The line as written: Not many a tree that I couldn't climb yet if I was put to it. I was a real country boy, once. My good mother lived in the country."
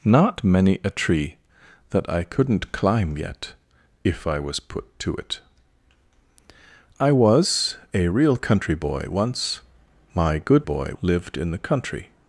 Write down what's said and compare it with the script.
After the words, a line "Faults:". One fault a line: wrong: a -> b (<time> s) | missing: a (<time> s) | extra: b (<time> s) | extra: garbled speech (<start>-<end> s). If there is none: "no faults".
Not many a tree that I couldn't climb yet if I was put to it. I was a real country boy, once. My good boy lived in the country."
Faults:
wrong: mother -> boy (10.6 s)